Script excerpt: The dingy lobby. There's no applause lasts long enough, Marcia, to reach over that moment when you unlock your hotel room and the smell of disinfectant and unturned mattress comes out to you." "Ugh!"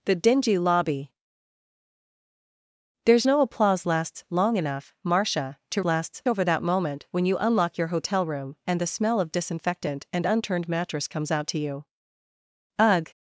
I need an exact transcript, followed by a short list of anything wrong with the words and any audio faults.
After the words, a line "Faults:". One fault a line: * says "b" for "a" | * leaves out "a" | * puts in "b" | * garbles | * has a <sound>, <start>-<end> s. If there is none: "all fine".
The dingy lobby. There's no applause lasts long enough, Marcia, to lasts over that moment when you unlock your hotel room and the smell of disinfectant and unturned mattress comes out to you." "Ugh!"
Faults:
* says "lasts" for "reach"